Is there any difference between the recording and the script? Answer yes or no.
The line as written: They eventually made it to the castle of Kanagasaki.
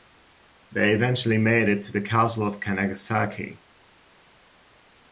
no